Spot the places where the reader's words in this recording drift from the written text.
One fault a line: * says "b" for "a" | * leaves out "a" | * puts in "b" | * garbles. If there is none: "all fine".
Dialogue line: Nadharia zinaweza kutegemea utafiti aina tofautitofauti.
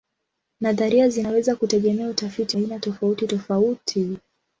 all fine